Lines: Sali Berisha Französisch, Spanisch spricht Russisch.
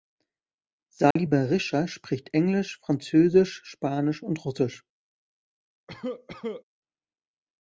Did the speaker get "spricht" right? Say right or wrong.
wrong